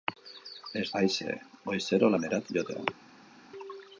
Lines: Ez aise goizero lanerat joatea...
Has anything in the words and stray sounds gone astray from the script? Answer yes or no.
no